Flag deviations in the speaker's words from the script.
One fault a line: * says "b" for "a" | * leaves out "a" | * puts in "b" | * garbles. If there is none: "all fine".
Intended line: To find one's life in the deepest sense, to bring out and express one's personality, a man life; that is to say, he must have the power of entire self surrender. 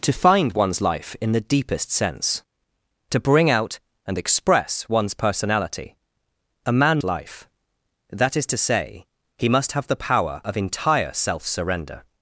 all fine